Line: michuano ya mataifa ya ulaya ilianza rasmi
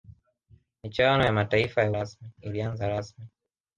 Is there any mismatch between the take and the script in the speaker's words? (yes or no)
yes